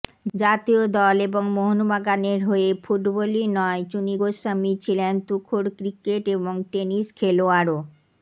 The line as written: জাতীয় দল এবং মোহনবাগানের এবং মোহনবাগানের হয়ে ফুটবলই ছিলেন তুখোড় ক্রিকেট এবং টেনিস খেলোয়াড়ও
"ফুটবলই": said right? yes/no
no